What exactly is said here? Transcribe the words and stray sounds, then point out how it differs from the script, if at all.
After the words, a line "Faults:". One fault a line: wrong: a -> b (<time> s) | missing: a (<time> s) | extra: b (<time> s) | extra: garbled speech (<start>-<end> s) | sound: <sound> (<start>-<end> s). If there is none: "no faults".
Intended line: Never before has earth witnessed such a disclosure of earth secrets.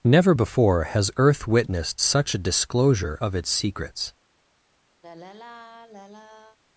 Never before has earth witnessed such a disclosure of its secrets.
Faults:
wrong: earth -> its (3.3 s)
sound: sigh (5.0-6.6 s)